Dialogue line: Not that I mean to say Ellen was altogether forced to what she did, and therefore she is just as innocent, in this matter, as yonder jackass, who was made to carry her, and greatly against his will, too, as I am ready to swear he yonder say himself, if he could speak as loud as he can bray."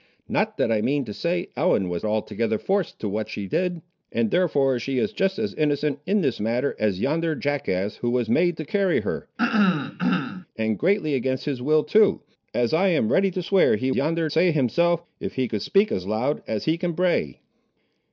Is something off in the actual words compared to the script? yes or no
no